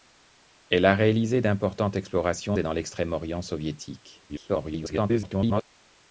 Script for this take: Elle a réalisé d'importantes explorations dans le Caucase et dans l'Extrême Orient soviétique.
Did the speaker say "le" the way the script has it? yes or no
no